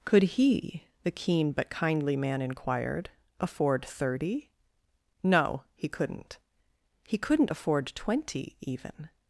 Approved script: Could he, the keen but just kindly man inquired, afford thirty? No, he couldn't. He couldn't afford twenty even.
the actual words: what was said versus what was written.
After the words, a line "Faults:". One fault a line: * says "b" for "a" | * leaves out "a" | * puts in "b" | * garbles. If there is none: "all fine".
Could he, the keen but kindly man inquired, afford thirty? No, he couldn't. He couldn't afford twenty even.
Faults:
* leaves out "just"